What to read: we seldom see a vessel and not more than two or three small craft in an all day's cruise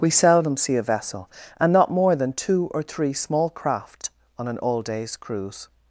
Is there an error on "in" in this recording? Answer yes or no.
yes